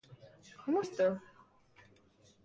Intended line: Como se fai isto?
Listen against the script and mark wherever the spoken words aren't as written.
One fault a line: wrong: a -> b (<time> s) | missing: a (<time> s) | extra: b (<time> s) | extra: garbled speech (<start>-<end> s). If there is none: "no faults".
missing: se fai (0.8 s)